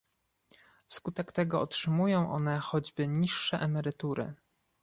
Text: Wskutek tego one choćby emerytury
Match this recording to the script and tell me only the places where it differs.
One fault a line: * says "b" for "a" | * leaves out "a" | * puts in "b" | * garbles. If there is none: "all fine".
* puts in "otrzymują"
* puts in "niższe"